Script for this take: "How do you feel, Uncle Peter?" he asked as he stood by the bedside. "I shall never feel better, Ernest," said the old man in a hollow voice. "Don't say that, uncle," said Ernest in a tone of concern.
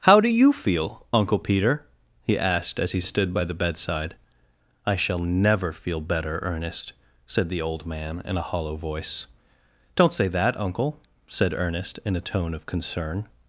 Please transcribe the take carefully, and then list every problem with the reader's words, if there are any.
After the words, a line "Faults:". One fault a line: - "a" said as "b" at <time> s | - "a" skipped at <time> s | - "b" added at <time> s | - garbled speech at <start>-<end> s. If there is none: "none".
"How do you feel, Uncle Peter?" he asked as he stood by the bedside. "I shall never feel better, Ernest," said the old man in a hollow voice. "Don't say that, uncle," said Ernest in a tone of concern.
Faults:
none